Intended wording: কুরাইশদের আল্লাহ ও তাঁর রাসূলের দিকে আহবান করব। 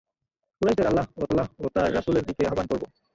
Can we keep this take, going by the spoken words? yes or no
no